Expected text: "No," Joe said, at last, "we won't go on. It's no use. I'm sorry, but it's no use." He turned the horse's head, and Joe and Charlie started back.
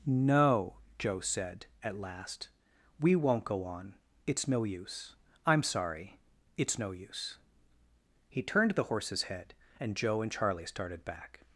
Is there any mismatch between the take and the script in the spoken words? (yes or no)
yes